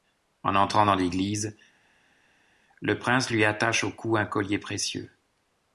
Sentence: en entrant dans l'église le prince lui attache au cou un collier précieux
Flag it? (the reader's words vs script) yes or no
no